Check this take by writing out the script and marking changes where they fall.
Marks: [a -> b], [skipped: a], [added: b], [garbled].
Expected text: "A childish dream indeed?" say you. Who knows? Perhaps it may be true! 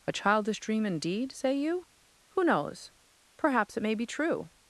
"A childish dream indeed?" say you. Who knows? Perhaps it may be true!